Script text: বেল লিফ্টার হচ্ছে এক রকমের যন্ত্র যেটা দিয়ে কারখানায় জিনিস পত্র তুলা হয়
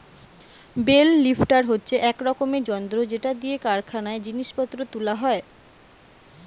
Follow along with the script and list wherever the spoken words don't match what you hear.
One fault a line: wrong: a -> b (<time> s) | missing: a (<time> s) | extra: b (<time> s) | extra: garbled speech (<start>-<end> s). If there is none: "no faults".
no faults